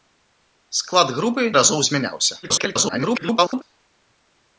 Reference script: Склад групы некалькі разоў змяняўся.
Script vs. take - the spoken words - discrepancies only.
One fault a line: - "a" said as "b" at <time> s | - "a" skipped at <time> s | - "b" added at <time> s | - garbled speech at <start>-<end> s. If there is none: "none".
- "некалькі" skipped at 1.4 s
- garbled speech at 2.4-3.6 s